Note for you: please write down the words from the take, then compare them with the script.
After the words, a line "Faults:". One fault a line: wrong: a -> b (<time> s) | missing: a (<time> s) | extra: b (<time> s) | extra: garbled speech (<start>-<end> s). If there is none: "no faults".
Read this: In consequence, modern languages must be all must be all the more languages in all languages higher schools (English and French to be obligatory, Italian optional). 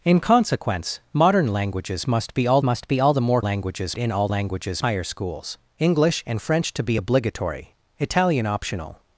In consequence, modern languages must be all must be all the more languages in all languages higher schools (English and French to be obligatory, Italian optional).
Faults:
no faults